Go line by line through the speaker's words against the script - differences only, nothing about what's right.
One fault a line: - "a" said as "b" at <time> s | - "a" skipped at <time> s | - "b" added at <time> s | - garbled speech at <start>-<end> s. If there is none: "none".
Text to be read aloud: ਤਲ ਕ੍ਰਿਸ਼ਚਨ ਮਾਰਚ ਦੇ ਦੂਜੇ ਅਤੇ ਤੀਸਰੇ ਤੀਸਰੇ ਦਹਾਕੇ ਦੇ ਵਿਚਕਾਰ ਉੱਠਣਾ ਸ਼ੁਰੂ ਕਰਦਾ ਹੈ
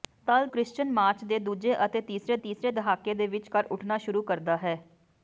none